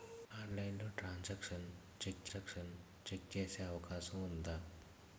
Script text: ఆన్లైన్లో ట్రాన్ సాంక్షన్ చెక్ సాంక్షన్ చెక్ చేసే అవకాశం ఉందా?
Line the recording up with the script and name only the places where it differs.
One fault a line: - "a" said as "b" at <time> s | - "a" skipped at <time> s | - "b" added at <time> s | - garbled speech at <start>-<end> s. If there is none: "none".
none